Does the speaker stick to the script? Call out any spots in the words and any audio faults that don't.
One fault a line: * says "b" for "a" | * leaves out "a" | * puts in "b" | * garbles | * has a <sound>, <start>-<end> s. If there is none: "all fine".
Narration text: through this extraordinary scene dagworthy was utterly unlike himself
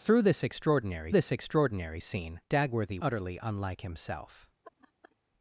* puts in "this extraordinary"
* leaves out "was"
* has a laugh, 4.6-5.2 s